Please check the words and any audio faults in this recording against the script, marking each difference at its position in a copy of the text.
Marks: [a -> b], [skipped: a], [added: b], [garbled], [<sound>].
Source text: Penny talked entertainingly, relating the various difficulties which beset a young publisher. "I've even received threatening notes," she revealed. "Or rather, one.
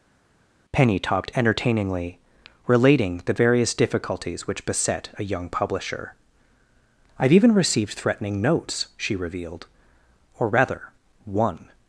Penny talked entertainingly, relating the various difficulties which beset a young publisher. "I've even received threatening notes," she revealed. "Or rather, one.